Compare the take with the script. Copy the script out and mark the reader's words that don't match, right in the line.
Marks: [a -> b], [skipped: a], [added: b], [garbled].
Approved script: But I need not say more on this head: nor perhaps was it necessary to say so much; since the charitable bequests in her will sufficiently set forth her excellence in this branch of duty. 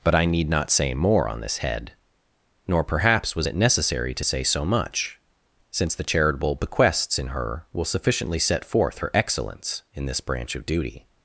But I need not say more on this head: nor perhaps was it necessary to say so much; since the charitable bequests in her will sufficiently set forth her excellence in this branch of duty.